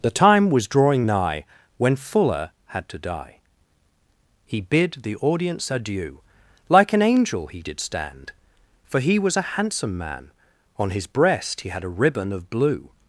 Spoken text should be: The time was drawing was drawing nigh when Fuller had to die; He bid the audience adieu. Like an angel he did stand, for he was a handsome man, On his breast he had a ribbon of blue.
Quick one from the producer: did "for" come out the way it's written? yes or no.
yes